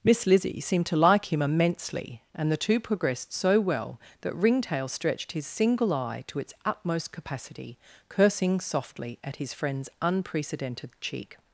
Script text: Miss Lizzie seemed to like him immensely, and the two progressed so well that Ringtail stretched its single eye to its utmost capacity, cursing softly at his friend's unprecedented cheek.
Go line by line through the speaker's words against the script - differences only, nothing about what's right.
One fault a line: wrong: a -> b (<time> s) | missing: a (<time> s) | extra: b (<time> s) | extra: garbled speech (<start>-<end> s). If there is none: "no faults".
wrong: its -> his (5.3 s)